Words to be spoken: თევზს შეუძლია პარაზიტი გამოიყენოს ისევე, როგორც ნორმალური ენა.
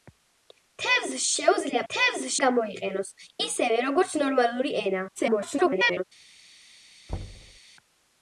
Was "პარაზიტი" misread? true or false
true